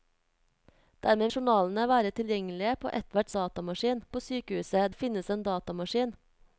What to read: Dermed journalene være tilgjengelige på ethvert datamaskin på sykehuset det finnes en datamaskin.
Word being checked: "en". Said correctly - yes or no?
yes